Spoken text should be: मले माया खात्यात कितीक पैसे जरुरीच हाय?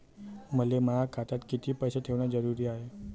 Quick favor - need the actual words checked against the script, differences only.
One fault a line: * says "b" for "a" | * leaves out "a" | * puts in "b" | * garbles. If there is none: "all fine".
* puts in "ठेवण"